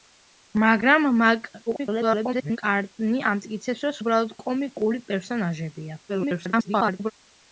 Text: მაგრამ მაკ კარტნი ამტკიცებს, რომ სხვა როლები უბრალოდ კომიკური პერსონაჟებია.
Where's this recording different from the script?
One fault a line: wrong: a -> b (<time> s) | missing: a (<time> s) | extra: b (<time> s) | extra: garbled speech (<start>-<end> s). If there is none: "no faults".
extra: garbled speech (1.7-2.6 s)
missing: სხვა როლები (3.9 s)
extra: garbled speech (6.1-7.1 s)